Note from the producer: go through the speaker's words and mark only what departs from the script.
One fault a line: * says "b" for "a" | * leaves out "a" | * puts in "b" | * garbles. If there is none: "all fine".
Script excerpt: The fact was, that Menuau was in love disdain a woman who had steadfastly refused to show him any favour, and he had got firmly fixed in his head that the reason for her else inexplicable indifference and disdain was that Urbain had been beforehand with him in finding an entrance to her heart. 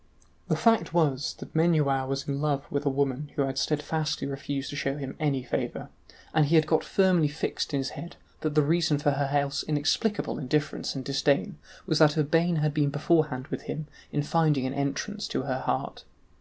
* says "with" for "disdain"